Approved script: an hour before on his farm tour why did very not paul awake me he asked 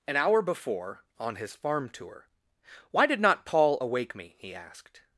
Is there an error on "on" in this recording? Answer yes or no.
no